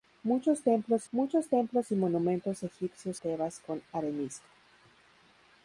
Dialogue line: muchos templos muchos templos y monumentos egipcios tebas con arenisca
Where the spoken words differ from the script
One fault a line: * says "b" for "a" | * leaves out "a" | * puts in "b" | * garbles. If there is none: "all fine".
all fine